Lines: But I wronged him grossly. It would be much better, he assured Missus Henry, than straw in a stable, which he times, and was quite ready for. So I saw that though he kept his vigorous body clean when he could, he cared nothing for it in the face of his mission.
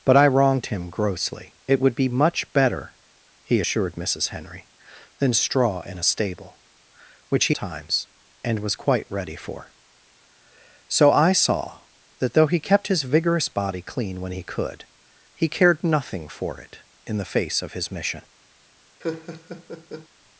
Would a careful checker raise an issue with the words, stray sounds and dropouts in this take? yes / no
yes